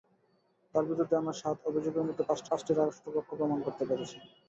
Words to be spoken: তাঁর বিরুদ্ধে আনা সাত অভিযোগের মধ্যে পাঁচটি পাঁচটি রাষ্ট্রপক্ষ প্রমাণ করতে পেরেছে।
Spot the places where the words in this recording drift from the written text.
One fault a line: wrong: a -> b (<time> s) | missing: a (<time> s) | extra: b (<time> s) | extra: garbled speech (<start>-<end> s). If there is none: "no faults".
no faults